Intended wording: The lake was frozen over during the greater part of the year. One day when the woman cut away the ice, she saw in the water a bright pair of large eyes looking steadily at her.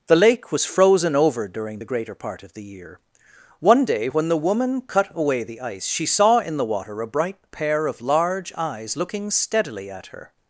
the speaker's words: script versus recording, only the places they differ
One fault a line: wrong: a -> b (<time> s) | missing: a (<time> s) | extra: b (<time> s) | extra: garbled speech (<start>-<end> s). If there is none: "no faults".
no faults